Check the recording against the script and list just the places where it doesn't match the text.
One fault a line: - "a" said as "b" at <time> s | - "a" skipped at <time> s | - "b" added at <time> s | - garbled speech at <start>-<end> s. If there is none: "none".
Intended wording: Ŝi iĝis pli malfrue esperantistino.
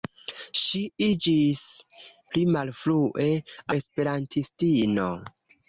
none